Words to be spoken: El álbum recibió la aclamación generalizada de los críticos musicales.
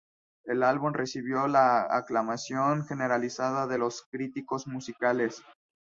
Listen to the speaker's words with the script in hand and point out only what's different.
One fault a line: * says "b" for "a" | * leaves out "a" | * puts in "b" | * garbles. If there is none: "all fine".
all fine